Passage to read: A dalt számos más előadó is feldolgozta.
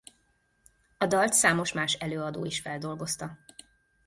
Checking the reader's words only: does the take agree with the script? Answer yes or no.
yes